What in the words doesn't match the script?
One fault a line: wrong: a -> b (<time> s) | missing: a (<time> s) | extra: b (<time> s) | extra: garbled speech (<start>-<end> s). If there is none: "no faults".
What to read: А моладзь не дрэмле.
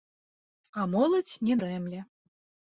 no faults